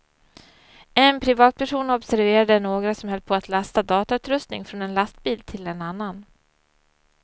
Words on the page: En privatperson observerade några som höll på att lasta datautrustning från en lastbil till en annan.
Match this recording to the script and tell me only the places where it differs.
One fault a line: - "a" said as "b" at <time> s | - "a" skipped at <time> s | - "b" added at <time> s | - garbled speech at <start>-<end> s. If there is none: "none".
none